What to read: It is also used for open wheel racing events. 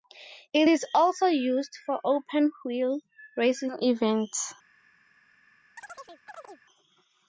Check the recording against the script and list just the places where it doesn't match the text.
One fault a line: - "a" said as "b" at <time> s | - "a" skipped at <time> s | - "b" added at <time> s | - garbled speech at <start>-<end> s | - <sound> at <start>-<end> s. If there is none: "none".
- chirp at 5.8-6.6 s